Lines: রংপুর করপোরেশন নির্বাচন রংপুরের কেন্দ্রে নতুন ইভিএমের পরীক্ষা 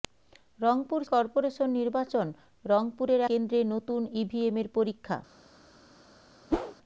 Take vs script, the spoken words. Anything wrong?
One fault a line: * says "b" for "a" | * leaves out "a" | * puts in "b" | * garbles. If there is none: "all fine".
all fine